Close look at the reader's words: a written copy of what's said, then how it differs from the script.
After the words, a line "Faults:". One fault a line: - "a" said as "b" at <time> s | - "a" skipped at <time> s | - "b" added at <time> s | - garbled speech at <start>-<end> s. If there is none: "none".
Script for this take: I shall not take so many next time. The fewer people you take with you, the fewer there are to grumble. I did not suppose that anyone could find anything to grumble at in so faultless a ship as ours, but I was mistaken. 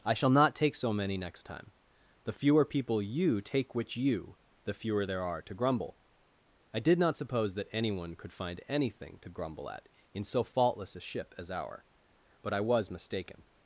I shall not take so many next time. The fewer people you take which you, the fewer there are to grumble. I did not suppose that anyone could find anything to grumble at in so faultless a ship as our, but I was mistaken.
Faults:
- "with" said as "which" at 3.8 s
- "ours" said as "our" at 11.5 s